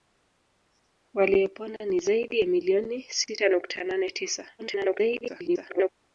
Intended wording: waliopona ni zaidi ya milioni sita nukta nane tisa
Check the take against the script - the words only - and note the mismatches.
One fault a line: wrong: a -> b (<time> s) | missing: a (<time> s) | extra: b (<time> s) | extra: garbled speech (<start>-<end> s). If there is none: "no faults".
extra: garbled speech (4.6-5.9 s)